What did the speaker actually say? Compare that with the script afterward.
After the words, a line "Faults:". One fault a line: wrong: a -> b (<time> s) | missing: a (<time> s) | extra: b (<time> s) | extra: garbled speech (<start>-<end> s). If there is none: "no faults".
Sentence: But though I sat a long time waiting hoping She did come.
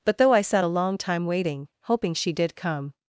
But though I sat a long time waiting hoping She did come.
Faults:
no faults